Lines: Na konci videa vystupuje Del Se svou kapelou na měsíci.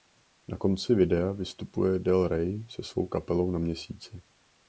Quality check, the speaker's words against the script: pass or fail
fail